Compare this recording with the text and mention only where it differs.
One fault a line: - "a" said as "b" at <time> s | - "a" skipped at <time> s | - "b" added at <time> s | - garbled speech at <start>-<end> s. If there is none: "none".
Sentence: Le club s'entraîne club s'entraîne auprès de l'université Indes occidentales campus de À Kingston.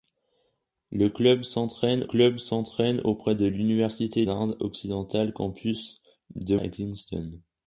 none